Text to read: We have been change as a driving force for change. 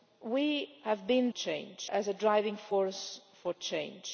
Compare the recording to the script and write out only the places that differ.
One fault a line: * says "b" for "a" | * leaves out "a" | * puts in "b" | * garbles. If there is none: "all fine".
all fine